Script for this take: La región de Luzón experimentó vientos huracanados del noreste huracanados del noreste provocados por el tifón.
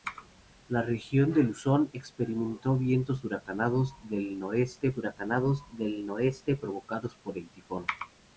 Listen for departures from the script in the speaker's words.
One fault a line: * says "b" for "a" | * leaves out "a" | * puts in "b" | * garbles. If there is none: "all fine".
all fine